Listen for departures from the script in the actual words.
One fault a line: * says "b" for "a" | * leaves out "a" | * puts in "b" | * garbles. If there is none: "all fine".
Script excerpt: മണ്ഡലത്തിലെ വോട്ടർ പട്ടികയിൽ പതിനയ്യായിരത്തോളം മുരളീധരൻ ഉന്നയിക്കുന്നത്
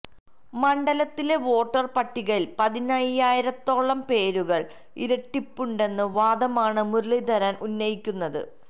* puts in "പേരുകൾ ഇരട്ടിപ്പുണ്ടെന്ന വാദമാണ്"